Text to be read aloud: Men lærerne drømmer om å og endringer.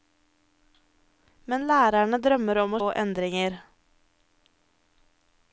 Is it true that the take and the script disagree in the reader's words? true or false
false